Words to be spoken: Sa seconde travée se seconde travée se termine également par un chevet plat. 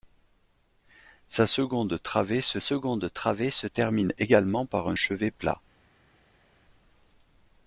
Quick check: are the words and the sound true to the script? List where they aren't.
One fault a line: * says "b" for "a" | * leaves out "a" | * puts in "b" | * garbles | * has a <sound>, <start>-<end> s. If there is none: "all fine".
all fine